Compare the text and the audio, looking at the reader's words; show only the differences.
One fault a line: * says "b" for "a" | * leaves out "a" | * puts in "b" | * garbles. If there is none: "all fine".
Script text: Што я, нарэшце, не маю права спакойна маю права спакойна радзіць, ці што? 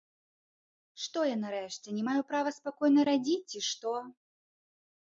* leaves out "маю права спакойна"